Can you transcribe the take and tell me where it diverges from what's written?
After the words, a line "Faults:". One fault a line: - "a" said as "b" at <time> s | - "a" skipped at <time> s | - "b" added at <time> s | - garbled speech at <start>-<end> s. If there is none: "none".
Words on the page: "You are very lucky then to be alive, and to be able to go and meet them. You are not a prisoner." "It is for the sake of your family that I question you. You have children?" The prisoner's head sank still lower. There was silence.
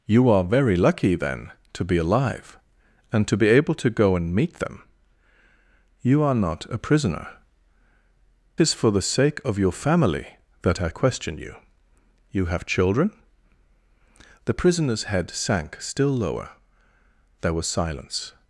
"You are very lucky then to be alive, and to be able to go and meet them. You are not a prisoner." "Is for the sake of your family that I question you. You have children?" The prisoner's head sank still lower. There was silence.
Faults:
- "It" skipped at 7.3 s